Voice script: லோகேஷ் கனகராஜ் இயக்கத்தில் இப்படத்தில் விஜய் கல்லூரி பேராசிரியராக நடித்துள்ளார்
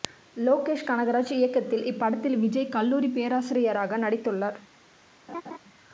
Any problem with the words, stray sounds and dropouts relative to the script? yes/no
yes